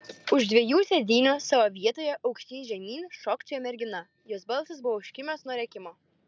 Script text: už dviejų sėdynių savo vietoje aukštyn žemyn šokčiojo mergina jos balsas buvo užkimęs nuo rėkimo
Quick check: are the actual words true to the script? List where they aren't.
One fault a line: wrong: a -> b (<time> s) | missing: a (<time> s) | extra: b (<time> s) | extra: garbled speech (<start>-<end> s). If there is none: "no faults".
no faults